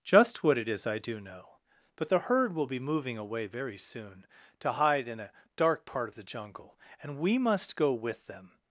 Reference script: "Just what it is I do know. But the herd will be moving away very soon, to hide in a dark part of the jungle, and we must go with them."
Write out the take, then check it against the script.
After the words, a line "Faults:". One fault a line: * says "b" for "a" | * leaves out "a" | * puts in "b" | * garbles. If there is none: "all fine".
"Just what it is I do know. But the herd will be moving away very soon, to hide in a dark part of the jungle, and we must go with them."
Faults:
all fine